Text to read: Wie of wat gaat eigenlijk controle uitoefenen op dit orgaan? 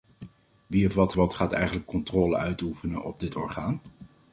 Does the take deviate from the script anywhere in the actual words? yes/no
yes